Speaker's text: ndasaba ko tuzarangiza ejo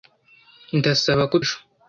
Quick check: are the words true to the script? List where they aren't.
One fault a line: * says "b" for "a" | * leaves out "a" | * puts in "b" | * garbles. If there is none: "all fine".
* leaves out "tuzarangiza"